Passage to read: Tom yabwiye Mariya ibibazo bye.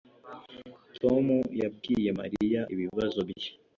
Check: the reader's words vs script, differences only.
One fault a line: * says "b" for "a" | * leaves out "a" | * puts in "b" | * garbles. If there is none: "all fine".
all fine